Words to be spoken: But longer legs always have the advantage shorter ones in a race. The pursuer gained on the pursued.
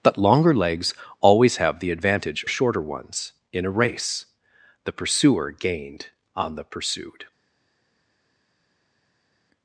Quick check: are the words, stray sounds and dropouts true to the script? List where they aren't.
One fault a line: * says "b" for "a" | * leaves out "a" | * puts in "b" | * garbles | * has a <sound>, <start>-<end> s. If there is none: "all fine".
all fine